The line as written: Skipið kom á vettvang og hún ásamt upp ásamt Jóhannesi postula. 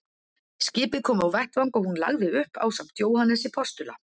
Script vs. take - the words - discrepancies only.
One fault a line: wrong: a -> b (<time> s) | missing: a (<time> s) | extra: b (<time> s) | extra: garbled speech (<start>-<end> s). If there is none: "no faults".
wrong: ásamt -> lagði (2.0 s)